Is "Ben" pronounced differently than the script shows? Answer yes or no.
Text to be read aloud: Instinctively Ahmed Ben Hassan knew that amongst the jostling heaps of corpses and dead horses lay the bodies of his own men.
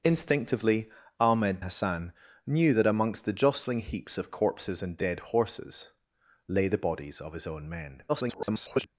yes